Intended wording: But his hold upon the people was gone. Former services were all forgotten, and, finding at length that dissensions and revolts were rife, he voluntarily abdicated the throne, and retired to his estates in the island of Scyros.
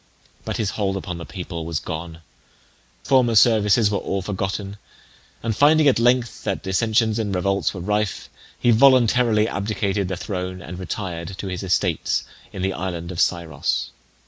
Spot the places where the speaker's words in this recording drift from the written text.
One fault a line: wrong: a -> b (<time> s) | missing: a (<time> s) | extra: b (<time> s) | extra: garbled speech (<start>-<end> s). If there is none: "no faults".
no faults